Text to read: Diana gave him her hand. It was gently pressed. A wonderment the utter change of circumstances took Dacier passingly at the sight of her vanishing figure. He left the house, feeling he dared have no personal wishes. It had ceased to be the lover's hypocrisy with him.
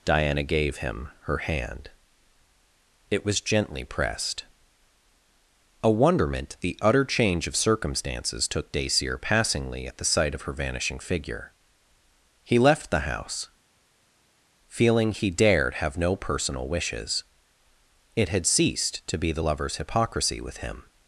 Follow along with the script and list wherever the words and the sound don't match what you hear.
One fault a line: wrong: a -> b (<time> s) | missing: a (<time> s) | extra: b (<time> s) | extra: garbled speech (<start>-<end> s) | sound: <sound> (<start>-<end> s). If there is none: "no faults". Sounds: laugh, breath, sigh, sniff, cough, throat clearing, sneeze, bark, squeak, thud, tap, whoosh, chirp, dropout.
no faults